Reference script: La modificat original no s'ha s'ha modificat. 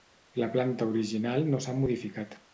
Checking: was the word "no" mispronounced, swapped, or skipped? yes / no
no